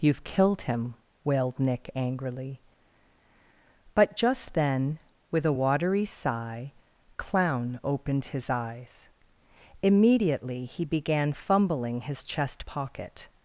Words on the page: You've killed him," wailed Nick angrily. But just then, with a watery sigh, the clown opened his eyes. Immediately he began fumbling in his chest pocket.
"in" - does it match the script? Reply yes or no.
no